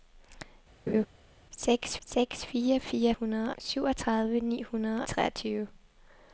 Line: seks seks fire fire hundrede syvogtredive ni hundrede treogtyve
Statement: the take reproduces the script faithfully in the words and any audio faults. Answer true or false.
false